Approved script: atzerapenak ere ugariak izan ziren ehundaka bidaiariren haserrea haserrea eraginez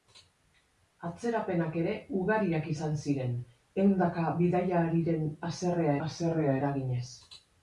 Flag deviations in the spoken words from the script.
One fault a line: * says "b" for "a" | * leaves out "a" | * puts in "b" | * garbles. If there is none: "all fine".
all fine